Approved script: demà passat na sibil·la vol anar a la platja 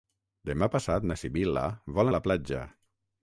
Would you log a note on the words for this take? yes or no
yes